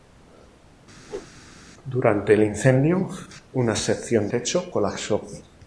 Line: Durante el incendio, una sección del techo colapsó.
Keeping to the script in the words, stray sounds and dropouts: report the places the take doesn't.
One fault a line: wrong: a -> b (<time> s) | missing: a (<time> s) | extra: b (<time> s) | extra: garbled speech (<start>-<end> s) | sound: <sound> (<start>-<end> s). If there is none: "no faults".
sound: whoosh (1.0-1.3 s)
missing: del (4.3 s)